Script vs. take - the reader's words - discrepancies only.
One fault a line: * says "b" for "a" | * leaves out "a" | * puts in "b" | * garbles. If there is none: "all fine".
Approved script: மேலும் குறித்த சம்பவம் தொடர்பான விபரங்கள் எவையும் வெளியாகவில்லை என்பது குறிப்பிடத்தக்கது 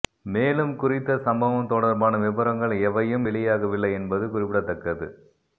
all fine